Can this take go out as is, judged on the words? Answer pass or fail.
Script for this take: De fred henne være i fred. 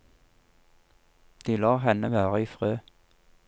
fail